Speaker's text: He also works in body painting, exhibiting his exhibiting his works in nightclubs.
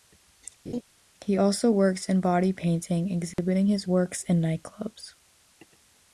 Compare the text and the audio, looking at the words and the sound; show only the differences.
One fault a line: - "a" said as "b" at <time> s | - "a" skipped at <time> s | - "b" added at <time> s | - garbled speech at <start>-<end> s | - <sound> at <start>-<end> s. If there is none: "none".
- laugh at 0.7-0.8 s
- dropout at 3.3-3.4 s
- "exhibiting his" skipped at 3.9 s